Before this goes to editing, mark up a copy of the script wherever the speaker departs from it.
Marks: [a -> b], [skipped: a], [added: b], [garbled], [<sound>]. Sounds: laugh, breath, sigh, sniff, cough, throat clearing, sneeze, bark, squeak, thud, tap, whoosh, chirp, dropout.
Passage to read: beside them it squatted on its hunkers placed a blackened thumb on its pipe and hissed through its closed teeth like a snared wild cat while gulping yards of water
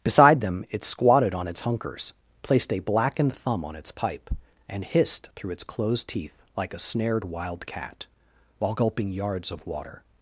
beside them it squatted on its hunkers placed a blackened thumb on its pipe and hissed through its closed teeth like a snared wild cat while gulping yards of water